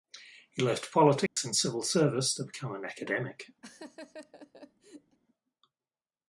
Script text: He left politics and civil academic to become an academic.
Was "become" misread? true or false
false